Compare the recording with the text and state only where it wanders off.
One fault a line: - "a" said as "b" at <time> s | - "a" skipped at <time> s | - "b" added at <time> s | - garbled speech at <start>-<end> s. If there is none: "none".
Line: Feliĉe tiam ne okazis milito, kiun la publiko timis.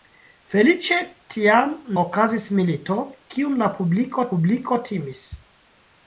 - "ne" skipped at 1.8 s
- "publiko" added at 4.3 s